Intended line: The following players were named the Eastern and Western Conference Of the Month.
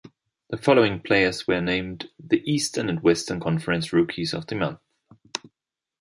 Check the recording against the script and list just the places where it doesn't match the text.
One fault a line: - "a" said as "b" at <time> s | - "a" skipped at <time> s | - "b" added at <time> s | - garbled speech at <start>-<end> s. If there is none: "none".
- "Rookies" added at 3.9 s